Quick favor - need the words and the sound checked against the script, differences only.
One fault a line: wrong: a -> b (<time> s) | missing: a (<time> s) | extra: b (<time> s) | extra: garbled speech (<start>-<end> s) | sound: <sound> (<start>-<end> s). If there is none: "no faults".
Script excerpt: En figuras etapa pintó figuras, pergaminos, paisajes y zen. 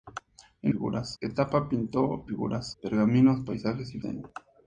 no faults